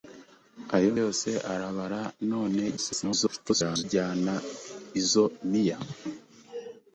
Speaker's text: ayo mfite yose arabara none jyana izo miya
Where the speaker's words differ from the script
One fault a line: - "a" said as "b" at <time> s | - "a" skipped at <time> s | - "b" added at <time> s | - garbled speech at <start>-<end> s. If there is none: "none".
- "mfite" skipped at 0.9 s
- garbled speech at 2.8-3.8 s